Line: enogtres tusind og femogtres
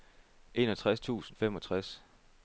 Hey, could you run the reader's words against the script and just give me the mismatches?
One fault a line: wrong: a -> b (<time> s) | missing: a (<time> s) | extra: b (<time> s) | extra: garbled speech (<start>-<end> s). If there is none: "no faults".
missing: og (1.4 s)